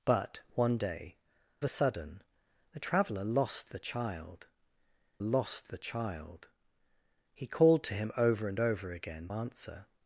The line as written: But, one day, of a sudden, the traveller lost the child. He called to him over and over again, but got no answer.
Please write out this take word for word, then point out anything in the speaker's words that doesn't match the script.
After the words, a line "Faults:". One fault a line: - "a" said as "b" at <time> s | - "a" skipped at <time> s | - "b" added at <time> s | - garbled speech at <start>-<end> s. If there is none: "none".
But, one day, a sudden, the traveller lost the child lost the child. He called to him over and over again, answer.
Faults:
- "of" skipped at 1.2 s
- "lost the child" added at 5.2 s
- "but got no" skipped at 9.3 s